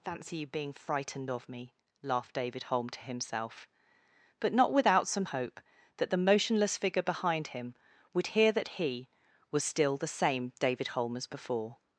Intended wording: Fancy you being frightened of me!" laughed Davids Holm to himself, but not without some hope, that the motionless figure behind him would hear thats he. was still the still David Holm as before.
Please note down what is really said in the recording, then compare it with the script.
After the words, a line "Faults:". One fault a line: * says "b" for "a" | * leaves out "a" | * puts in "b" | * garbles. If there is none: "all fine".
Fancy you being frightened of me!" laughed David Holm to himself, but not without some hope, that the motionless figure behind him would hear that he. was still the same David Holm as before.
Faults:
* says "David" for "Davids"
* says "that" for "thats"
* says "same" for "still"